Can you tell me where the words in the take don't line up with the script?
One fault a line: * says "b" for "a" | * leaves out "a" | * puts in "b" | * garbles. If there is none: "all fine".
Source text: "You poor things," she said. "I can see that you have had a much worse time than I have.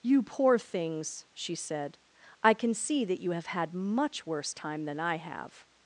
* leaves out "a"